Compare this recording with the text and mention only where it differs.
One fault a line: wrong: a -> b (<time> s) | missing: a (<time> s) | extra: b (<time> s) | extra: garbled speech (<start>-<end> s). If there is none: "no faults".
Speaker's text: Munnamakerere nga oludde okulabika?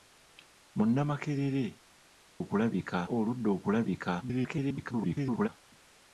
wrong: nga -> okulabika (2.4 s)
extra: garbled speech (4.2-5.5 s)